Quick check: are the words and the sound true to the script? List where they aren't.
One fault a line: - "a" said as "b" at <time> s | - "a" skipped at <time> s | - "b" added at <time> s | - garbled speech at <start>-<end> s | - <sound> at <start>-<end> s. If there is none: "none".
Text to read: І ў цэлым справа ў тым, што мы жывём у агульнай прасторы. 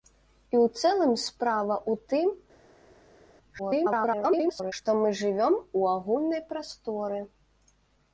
- garbled speech at 3.6-4.7 s